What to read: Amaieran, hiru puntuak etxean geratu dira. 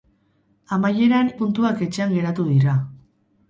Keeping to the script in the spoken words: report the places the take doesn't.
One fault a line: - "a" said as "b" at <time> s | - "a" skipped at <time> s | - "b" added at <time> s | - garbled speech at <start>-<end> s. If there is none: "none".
- "hiru" skipped at 1.3 s